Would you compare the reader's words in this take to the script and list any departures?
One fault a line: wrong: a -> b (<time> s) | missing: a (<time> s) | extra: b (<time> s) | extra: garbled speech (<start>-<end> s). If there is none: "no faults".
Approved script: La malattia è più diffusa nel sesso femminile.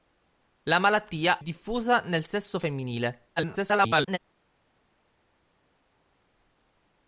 missing: è più (1.4 s)
extra: garbled speech (3.4-4.2 s)